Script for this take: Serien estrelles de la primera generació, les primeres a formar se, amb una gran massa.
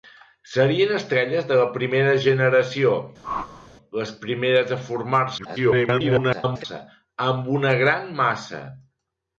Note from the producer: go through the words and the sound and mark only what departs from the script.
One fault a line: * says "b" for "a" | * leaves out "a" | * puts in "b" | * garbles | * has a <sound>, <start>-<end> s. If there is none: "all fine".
* has a whoosh, 3.2-3.7 s
* garbles